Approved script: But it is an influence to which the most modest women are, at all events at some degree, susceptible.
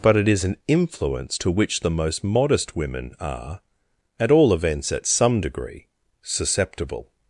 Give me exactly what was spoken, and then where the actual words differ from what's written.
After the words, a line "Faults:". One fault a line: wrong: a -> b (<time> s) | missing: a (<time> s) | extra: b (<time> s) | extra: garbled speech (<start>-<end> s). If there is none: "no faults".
But it is an influence to which the most modest women are, at all events at some degree, susceptible.
Faults:
no faults